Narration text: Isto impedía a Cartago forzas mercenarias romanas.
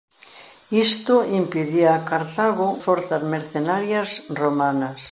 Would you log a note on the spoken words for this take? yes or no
no